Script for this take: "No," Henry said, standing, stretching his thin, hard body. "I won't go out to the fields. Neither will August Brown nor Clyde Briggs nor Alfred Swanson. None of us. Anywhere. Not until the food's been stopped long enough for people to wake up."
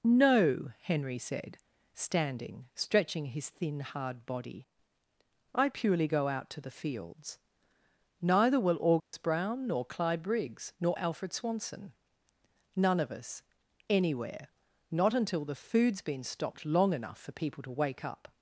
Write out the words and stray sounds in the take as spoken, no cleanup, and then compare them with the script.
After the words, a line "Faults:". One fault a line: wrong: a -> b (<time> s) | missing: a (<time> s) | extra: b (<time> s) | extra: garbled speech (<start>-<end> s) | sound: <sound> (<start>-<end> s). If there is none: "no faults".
"No," Henry said, standing, stretching his thin, hard body. "I purely go out to the fields. Neither will August Brown nor Clyde Briggs nor Alfred Swanson. None of us. Anywhere. Not until the food's been stopped long enough for people to wake up."
Faults:
wrong: won't -> purely (5.7 s)
sound: dropout (9.0-9.1 s)